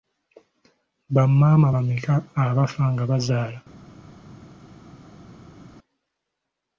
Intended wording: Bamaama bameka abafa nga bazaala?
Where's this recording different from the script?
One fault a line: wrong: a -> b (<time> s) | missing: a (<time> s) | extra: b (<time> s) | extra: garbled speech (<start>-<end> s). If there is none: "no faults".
no faults